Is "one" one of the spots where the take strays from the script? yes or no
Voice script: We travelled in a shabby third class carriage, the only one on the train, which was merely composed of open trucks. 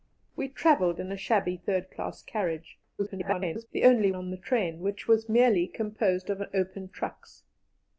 yes